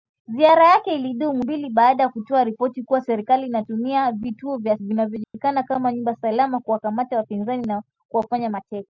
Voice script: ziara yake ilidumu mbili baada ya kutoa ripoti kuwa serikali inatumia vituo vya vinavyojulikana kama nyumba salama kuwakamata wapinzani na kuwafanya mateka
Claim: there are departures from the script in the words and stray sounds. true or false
true